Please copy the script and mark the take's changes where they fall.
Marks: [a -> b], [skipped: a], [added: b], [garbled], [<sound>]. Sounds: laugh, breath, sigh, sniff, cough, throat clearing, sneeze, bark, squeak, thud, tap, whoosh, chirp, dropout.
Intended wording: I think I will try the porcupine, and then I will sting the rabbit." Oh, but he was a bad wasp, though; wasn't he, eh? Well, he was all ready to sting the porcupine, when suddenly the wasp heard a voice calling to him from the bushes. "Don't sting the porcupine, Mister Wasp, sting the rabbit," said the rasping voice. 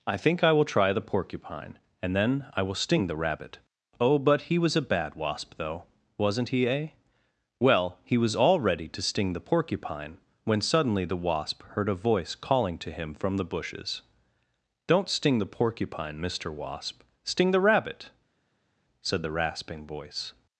I think I will try the porcupine, and then I will sting the rabbit." Oh, but he was a bad wasp, though; wasn't he, eh? Well, he was all ready to sting the porcupine, when suddenly the wasp heard a voice calling to him from the bushes. "Don't sting the porcupine, Mister Wasp, sting the rabbit," said the rasping voice.